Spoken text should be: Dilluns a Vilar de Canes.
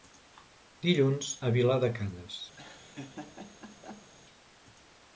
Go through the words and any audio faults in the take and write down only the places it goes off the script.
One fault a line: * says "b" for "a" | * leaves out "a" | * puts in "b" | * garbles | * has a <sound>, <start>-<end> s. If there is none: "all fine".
* has a laugh, 2.5-4.1 s